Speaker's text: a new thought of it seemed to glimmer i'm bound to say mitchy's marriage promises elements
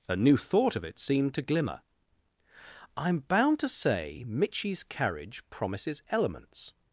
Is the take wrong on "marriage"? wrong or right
wrong